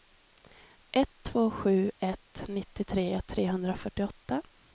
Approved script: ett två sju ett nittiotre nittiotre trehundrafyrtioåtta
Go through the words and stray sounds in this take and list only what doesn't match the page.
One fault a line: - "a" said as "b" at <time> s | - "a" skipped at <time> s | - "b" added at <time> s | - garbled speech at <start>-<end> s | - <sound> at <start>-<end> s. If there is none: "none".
- "nittiotre" skipped at 3.2 s